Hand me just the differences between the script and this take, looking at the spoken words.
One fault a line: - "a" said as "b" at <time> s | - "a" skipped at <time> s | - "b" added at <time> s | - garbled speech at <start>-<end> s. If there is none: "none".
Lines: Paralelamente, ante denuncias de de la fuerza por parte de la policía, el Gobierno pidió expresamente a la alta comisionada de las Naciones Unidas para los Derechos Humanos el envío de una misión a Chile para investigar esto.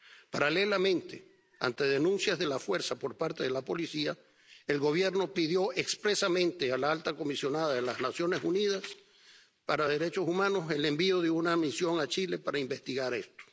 none